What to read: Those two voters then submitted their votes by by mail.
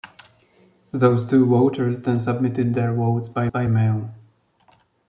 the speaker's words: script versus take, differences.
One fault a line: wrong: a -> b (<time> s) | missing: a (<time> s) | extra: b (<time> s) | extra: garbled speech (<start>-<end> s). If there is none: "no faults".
no faults